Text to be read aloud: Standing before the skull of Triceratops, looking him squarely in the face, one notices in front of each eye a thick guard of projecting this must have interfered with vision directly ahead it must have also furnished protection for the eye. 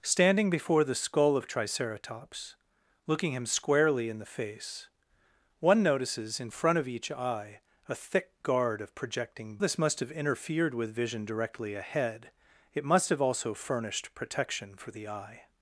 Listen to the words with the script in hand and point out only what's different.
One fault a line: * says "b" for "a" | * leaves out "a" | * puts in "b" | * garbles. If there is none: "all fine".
all fine